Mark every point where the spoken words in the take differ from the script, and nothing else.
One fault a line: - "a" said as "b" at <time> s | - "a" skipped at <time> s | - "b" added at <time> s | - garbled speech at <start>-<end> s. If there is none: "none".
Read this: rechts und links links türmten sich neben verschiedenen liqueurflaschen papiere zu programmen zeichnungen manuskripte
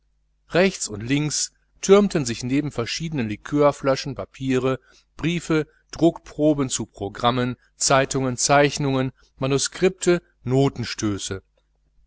- "links" skipped at 1.5 s
- "briefe druckproben" added at 5.1 s
- "zeitungen" added at 7.8 s